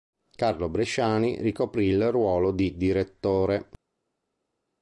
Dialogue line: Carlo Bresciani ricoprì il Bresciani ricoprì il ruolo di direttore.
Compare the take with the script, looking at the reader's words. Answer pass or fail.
fail